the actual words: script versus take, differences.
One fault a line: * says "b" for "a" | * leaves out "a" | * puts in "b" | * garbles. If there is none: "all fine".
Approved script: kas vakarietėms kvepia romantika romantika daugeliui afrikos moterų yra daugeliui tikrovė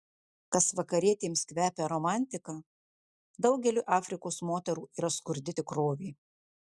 * leaves out "romantika"
* says "skurdi" for "daugeliui"